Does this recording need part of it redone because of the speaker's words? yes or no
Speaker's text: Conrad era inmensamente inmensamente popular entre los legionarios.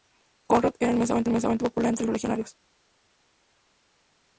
no